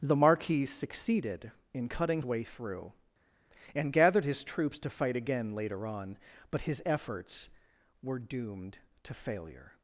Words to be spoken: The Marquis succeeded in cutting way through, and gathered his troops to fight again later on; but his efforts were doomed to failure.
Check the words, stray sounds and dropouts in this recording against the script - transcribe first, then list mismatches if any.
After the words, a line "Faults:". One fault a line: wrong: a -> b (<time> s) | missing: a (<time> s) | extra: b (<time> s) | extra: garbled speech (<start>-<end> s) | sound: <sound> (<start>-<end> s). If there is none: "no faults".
The Marquis succeeded in cutting way through, and gathered his troops to fight again later on; but his efforts were doomed to failure.
Faults:
no faults